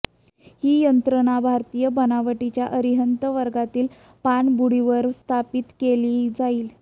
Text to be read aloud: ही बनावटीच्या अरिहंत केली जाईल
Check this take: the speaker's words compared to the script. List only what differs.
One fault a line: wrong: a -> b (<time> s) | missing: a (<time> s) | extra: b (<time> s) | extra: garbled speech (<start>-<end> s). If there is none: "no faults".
extra: यंत्रणा भारतीय (0.8 s)
extra: वर्गातील पाणबुडीवर स्थापित (3.3 s)